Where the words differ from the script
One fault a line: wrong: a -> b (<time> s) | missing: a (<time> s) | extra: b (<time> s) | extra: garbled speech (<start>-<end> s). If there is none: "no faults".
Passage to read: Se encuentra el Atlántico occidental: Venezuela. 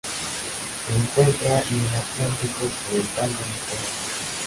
no faults